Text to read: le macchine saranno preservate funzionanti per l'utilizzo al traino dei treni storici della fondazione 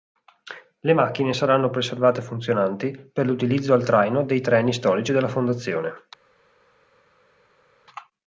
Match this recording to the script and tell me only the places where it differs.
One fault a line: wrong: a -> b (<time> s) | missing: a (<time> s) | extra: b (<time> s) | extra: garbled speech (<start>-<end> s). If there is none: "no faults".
no faults